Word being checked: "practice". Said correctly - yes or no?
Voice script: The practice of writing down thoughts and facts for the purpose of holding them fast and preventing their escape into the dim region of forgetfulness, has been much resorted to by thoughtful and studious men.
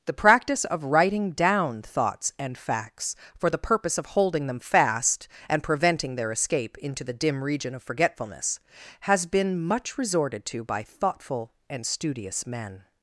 yes